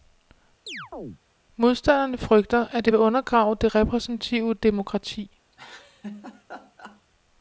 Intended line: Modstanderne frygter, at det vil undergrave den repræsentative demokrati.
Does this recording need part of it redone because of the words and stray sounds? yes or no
yes